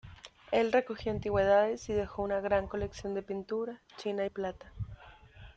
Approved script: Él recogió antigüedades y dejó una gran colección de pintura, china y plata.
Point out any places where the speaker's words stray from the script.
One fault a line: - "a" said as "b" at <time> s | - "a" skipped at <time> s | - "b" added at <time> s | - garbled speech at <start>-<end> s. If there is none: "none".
none